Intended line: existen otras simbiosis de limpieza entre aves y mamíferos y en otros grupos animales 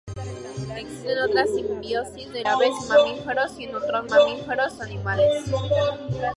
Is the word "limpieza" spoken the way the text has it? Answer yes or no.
no